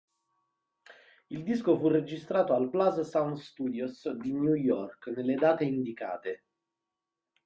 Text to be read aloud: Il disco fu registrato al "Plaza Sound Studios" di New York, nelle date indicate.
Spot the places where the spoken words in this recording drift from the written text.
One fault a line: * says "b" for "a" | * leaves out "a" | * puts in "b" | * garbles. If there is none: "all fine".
all fine